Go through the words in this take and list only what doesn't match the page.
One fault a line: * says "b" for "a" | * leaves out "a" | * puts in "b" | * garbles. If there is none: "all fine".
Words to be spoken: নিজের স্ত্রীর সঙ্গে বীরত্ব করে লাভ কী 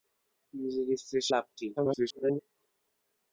* leaves out "সঙ্গে বীরত্ব করে"
* garbles